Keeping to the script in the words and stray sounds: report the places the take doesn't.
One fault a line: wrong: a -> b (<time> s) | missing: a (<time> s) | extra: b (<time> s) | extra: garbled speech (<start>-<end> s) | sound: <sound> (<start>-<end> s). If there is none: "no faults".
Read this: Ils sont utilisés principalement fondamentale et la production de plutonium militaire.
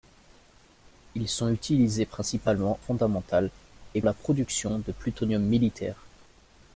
no faults